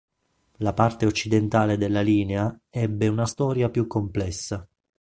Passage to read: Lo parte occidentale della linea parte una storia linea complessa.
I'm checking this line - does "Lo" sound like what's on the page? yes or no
no